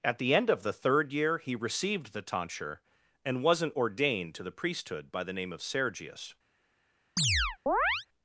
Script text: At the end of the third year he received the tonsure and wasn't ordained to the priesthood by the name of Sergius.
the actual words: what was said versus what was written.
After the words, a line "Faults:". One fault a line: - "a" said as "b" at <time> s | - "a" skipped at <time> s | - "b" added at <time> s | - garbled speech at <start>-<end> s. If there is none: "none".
At the end of the third year he received the tonsure and wasn't ordained to the priesthood by the name of Sergius.
Faults:
none